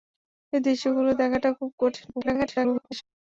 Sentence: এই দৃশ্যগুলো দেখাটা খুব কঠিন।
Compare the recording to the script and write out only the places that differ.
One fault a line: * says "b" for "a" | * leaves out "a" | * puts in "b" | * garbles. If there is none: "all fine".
* garbles